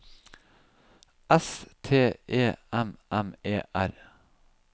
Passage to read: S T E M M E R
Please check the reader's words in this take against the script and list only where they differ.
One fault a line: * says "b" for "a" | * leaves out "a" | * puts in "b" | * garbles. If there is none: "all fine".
all fine